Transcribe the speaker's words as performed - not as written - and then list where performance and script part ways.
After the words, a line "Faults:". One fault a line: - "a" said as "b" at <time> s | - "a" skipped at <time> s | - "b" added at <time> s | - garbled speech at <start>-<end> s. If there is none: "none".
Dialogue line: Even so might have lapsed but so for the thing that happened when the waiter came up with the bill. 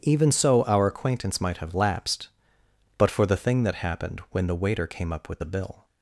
Even so our acquaintance might have lapsed but for the thing that happened when the waiter came up with the bill.
Faults:
- "our acquaintance" added at 0.6 s
- "so" skipped at 3.1 s